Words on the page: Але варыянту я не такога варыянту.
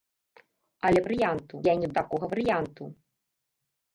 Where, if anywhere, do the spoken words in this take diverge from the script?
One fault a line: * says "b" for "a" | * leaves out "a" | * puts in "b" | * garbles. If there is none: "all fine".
all fine